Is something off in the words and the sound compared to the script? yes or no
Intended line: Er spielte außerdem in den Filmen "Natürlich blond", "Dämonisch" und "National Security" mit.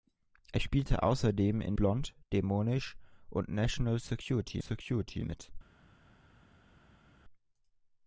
yes